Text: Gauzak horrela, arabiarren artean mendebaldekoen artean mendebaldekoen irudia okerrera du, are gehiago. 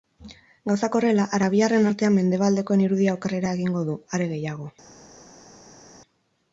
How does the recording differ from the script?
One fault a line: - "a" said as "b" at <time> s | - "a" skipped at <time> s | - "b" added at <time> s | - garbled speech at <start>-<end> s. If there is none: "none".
- "artean mendebaldekoen" skipped at 2.8 s
- "egingo" added at 3.6 s